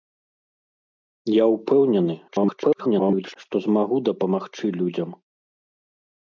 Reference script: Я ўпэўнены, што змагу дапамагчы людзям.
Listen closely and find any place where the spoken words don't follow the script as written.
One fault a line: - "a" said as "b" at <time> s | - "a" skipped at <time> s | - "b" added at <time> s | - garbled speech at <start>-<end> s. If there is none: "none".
- garbled speech at 2.3-3.4 s